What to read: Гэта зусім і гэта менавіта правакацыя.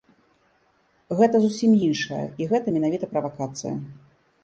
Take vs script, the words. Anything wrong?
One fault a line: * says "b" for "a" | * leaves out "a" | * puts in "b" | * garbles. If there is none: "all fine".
* puts in "іншае"